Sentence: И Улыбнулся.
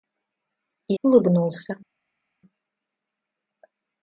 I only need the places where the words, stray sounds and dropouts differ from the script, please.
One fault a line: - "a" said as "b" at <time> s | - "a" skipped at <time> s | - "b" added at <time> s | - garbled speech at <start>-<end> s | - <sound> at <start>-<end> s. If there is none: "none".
none